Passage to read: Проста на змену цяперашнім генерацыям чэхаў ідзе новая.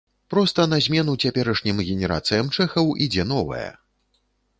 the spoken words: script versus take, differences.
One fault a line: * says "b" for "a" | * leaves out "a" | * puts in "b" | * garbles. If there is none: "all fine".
all fine